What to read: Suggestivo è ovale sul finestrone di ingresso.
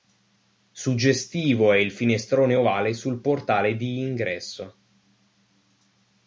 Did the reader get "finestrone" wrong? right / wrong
wrong